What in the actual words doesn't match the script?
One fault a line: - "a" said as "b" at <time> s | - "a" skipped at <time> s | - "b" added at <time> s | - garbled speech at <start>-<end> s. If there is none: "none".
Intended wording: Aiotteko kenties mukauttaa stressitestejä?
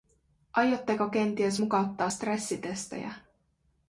none